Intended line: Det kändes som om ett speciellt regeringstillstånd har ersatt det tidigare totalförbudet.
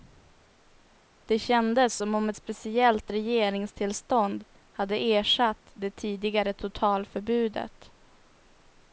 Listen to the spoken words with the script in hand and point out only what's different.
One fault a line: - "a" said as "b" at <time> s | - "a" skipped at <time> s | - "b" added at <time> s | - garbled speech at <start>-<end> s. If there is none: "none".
- "har" said as "hade" at 4.7 s